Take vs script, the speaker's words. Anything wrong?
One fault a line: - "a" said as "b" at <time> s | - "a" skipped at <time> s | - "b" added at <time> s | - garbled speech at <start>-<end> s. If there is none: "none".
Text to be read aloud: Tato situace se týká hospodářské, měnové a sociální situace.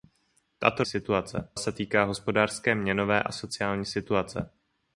none